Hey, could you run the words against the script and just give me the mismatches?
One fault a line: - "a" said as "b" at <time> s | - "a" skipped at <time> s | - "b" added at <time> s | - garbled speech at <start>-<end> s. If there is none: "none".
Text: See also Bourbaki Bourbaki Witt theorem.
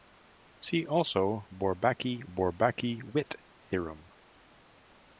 none